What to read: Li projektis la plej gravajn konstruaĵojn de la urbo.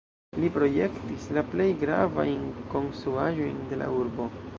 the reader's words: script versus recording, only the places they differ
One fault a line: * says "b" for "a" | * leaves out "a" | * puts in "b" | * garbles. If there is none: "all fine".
all fine